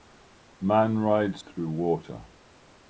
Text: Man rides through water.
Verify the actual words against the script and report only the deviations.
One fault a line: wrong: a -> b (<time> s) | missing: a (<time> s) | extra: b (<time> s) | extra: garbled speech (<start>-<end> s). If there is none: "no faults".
no faults